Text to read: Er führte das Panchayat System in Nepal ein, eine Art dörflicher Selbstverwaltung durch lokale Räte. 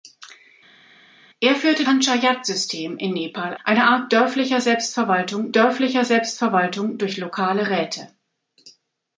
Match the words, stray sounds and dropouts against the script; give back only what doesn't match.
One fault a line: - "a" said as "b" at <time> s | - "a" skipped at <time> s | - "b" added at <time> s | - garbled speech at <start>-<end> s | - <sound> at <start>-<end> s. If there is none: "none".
- "das" skipped at 1.8 s
- "ein" skipped at 3.6 s
- "dörflicher Selbstverwaltung" added at 5.5 s